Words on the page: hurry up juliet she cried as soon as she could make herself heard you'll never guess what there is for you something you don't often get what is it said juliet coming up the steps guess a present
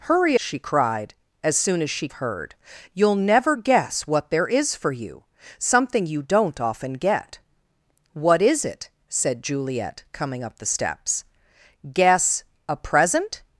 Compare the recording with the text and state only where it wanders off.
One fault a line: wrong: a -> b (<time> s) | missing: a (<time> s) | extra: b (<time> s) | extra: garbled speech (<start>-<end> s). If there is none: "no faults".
missing: up juliet (0.4 s)
missing: could make herself (2.1 s)